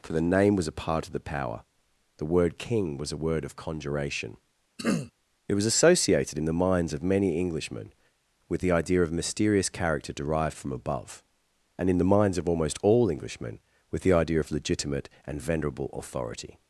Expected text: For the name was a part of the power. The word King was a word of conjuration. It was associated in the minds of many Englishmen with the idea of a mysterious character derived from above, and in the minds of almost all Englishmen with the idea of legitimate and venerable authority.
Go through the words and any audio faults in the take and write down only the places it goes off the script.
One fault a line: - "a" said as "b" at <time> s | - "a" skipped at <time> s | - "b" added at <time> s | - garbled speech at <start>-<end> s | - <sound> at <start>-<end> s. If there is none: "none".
- throat clearing at 4.8-5.1 s
- "a" skipped at 9.1 s